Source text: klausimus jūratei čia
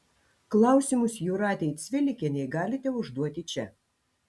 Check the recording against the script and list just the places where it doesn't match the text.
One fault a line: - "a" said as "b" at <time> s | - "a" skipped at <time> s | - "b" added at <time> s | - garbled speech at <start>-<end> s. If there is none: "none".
- "cvilikienei galite užduoti" added at 1.8 s